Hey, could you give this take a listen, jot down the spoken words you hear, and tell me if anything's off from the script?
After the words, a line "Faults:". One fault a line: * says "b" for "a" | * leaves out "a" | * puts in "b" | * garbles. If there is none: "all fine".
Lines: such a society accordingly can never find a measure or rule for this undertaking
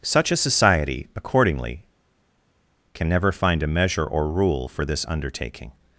such a society accordingly can never find a measure or rule for this undertaking
Faults:
all fine